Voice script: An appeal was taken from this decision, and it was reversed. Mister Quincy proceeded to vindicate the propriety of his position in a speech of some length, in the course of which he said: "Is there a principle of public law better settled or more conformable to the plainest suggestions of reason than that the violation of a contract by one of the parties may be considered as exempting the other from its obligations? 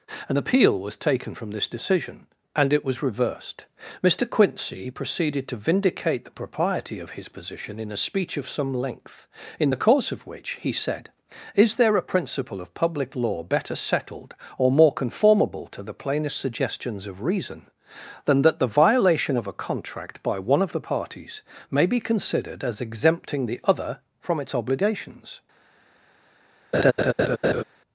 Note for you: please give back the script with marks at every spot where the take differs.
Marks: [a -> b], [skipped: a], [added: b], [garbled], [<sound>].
An appeal was taken from this decision, and it was reversed. Mister Quincy proceeded to vindicate the propriety of his position in a speech of some length, in the course of which he said: "Is there a principle of public law better settled or more conformable to the plainest suggestions of reason than that the violation of a contract by one of the parties may be considered as exempting the other from its obligations? [laugh]